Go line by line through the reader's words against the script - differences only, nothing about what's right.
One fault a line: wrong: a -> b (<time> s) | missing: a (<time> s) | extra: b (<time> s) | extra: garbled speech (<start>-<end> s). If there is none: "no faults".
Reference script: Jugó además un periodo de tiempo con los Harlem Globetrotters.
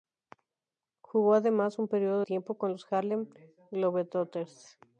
missing: de (2.2 s)